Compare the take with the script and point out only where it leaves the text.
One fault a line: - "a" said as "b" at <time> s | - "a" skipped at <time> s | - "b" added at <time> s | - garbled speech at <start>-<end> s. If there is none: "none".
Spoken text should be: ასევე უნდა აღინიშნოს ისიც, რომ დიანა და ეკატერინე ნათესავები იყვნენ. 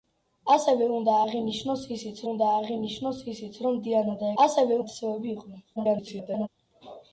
- "უნდა აღინიშნოს ისიც" added at 2.3 s
- "ეკატერინე" said as "ასევე" at 4.4 s
- garbled speech at 5.8-6.5 s